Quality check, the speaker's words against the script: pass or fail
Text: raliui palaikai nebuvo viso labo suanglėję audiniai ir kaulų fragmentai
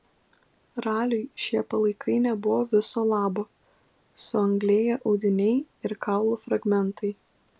fail